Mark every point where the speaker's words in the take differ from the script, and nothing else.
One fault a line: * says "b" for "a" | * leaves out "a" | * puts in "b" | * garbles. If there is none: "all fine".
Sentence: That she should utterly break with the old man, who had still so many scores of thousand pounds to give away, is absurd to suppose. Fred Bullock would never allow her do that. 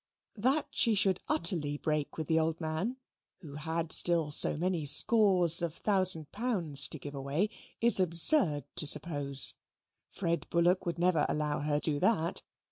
all fine